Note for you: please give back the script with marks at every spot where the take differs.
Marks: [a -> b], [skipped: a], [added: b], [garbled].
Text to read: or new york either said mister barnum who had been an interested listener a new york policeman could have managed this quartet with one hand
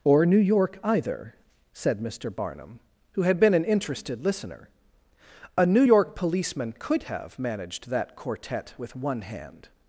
or new york either said mister barnum who had been an interested listener a new york policeman could have managed [this -> that] quartet with one hand